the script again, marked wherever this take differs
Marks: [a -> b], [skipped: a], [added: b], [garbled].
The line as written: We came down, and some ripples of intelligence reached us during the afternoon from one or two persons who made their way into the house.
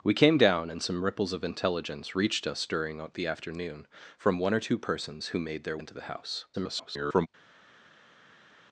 We came down, and some ripples of intelligence reached us during the afternoon from one or two persons who made their [skipped: way] into the house. [garbled]